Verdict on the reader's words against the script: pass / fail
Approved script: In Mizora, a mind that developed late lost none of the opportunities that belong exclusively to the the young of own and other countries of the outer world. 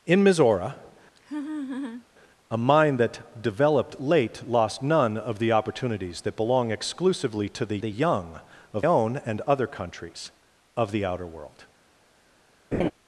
pass